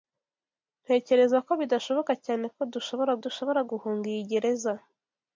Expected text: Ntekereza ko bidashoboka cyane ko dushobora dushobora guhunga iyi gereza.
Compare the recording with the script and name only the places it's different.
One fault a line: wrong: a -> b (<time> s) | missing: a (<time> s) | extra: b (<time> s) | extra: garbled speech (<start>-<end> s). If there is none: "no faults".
no faults